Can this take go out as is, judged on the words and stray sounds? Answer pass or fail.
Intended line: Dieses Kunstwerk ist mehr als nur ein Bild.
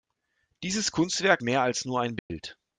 fail